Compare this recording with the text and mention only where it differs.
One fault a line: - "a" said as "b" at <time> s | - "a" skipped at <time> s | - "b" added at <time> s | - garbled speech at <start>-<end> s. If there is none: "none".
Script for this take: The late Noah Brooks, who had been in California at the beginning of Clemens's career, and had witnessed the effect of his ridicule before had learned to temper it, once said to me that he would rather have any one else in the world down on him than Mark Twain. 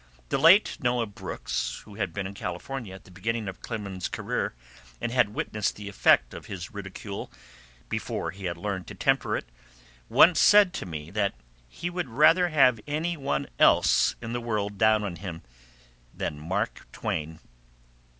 - "he" added at 8.3 s